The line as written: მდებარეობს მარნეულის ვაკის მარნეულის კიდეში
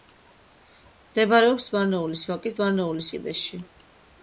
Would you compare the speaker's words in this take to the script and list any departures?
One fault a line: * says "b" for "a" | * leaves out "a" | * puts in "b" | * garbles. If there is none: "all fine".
all fine